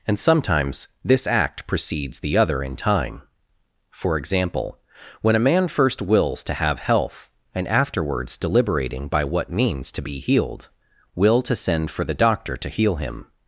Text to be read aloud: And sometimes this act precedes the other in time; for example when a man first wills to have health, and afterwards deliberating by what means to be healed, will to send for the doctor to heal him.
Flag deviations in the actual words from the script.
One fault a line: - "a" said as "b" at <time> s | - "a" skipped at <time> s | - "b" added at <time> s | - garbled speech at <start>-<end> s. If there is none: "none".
none